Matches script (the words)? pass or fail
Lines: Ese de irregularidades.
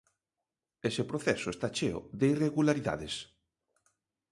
fail